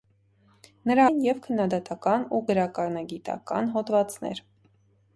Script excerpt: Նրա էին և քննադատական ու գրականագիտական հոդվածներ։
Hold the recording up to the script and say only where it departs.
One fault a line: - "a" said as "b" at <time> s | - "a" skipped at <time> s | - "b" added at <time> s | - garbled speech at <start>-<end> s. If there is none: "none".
none